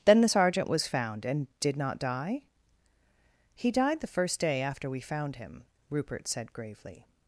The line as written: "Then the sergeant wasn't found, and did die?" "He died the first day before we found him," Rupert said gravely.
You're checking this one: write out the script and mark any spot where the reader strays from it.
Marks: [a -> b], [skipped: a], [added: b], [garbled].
"Then the sergeant [wasn't -> was] found, and did [added: not] die?" "He died the first day [before -> after] we found him," Rupert said gravely.